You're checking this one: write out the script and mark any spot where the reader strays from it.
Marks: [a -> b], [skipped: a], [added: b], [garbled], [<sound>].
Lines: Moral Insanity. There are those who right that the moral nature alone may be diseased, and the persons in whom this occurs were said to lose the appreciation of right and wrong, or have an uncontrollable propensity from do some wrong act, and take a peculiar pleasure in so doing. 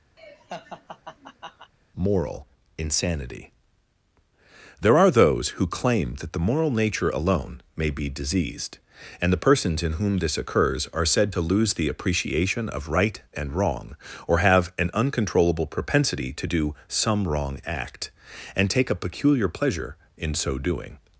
[laugh] Moral Insanity. There are those who [right -> claim] that the moral nature alone may be diseased, and the persons in whom this occurs [were -> are] said to lose the appreciation of right and wrong, or have an uncontrollable propensity [from -> to] do some wrong act, and take a peculiar pleasure in so doing.